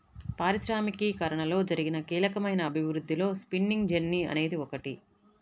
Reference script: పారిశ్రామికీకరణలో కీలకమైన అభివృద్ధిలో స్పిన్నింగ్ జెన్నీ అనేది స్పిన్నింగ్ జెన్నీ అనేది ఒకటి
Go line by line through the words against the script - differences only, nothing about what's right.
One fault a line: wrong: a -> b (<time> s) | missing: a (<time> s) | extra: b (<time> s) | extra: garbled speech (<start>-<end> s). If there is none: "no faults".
extra: జరిగిన (1.6 s)
missing: స్పిన్నింగ్ జెన్నీ అనేది (4.6 s)